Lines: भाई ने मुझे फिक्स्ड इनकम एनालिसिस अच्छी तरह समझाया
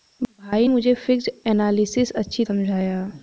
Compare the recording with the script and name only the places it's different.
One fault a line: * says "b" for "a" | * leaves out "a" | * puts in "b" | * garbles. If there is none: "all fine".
* leaves out "ने"
* leaves out "इनकम"
* leaves out "तरह"